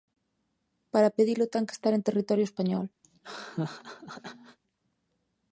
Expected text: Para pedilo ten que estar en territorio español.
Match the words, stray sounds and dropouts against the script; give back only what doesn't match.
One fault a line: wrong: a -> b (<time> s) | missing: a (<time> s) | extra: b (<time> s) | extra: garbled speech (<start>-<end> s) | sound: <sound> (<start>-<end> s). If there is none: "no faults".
sound: laugh (3.0-4.6 s)